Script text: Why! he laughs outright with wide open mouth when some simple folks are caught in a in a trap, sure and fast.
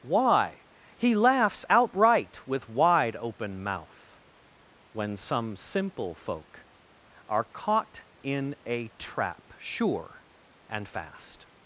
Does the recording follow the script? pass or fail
fail